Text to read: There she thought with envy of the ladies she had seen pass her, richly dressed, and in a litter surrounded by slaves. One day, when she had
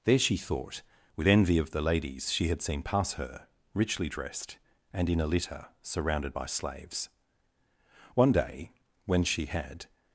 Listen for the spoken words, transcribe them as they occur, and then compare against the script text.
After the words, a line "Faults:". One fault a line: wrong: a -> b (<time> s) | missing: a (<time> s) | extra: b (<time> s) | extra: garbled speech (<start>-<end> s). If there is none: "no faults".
There she thought with envy of the ladies she had seen pass her, richly dressed, and in a litter surrounded by slaves. One day, when she had
Faults:
no faults